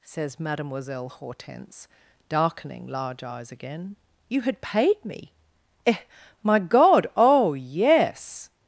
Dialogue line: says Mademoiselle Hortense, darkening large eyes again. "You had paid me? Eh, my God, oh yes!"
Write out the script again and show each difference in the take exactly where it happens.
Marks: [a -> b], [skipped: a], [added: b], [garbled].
says Mademoiselle Hortense, darkening large eyes again. "You had paid me? Eh, my God, oh yes!"